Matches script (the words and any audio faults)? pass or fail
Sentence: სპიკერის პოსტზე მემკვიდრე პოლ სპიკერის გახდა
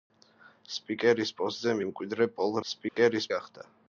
fail